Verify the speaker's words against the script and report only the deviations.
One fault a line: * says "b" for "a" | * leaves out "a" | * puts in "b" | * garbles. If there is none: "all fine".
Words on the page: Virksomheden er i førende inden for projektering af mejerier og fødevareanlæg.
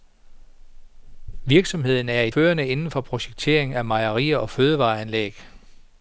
all fine